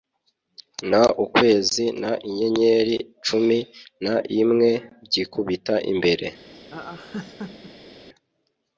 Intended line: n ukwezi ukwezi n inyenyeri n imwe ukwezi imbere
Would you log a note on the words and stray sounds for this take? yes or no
yes